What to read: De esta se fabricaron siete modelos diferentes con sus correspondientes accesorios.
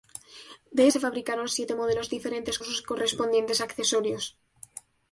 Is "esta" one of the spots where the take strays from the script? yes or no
yes